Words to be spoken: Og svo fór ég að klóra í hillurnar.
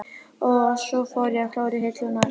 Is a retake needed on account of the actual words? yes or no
no